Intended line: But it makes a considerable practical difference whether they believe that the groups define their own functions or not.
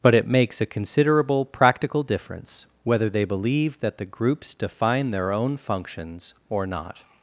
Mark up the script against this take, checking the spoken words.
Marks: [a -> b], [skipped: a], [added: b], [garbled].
But it makes a considerable practical difference whether they believe that the groups define their own functions or not.